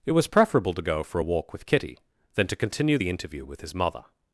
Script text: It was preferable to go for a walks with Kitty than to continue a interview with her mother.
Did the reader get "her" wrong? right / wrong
wrong